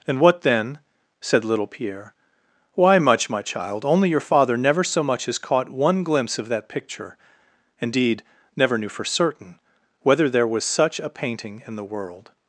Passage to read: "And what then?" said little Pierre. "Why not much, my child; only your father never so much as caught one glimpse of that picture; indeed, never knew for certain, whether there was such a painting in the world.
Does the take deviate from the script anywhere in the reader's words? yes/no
yes